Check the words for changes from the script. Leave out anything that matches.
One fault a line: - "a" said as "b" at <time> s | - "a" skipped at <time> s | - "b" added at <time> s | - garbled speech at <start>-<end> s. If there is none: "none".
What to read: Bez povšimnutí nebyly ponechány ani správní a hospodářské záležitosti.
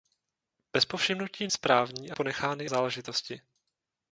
- "nebyly ponechány ani" skipped at 1.5 s
- "hospodářské" said as "ponechány" at 2.1 s